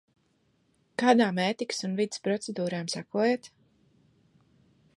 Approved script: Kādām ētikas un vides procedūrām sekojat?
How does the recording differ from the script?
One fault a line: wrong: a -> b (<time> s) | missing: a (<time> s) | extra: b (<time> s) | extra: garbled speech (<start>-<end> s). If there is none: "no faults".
no faults